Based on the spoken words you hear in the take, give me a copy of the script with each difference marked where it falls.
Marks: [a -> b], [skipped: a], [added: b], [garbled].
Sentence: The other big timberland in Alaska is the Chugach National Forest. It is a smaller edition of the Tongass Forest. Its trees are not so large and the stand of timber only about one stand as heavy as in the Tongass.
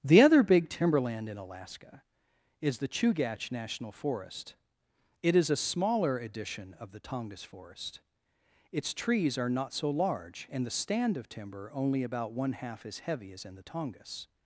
The other big timberland in Alaska is the Chugach National Forest. It is a smaller edition of the Tongass Forest. Its trees are not so large and the stand of timber only about one [stand -> half] as heavy as in the Tongass.